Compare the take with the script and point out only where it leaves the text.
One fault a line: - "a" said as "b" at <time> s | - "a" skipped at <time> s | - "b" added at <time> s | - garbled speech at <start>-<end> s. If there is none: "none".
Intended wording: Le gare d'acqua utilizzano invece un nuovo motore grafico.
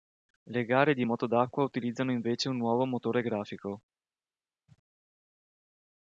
- "di moto" added at 0.9 s